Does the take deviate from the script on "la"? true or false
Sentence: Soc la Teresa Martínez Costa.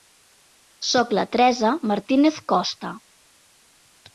false